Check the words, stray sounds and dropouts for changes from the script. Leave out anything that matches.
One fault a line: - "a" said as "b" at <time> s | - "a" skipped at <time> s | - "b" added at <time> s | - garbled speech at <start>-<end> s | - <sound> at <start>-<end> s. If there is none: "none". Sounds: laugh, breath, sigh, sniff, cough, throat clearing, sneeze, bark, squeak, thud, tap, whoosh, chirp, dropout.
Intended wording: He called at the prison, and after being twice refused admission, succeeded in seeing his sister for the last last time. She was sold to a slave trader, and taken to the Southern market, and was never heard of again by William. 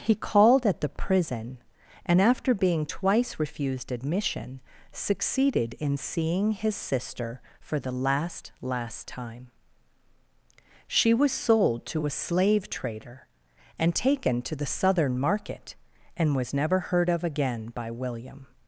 none